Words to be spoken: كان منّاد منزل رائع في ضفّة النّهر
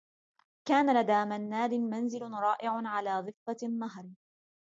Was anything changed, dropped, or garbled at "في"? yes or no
yes